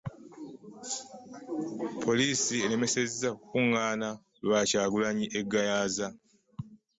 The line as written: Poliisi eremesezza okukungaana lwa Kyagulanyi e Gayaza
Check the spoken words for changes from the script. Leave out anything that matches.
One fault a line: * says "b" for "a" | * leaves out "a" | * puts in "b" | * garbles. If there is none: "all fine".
all fine